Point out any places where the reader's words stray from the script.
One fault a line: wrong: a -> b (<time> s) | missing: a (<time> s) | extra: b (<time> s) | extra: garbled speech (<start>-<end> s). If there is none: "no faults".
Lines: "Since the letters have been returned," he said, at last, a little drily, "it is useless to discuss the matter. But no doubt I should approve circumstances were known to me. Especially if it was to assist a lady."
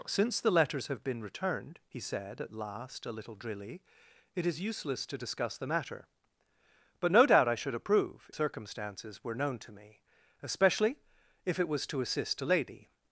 no faults